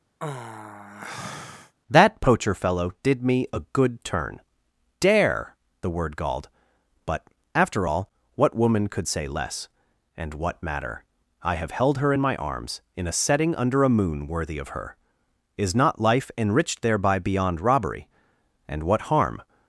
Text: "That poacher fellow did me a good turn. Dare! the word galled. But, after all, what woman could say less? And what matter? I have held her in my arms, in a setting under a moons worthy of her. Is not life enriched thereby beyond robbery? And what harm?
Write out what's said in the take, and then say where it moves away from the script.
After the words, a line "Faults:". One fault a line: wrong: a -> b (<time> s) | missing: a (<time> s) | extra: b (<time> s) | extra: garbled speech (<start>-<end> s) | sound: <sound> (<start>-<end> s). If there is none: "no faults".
"That poacher fellow did me a good turn. Dare! the word galled. But, after all, what woman could say less? And what matter? I have held her in my arms, in a setting under a moon worthy of her. Is not life enriched thereby beyond robbery? And what harm?
Faults:
sound: sigh (0.2-1.7 s)
wrong: moons -> moon (14.0 s)